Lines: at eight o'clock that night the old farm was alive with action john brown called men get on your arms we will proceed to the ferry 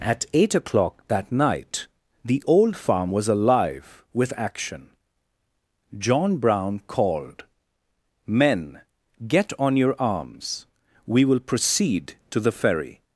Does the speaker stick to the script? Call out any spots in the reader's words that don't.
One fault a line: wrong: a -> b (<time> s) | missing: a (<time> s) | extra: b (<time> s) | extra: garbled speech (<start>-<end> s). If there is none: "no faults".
no faults